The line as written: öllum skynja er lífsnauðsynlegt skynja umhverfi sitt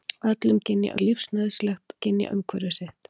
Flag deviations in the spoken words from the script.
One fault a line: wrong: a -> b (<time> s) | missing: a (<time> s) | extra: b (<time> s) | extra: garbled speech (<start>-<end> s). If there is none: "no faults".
no faults